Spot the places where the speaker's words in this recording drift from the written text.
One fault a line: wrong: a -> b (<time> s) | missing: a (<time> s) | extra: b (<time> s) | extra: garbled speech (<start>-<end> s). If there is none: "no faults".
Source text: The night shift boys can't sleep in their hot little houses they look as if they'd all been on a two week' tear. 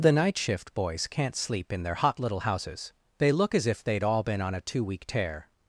no faults